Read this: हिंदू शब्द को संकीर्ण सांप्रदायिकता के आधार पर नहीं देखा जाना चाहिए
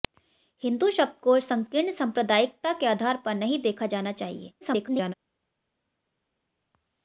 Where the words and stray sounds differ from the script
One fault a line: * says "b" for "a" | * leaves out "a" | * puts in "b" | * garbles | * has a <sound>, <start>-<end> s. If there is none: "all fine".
* garbles